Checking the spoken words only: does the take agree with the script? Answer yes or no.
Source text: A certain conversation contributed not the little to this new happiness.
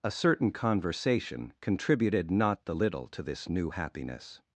yes